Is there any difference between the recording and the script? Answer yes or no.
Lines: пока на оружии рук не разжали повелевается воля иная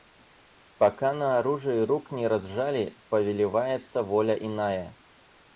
no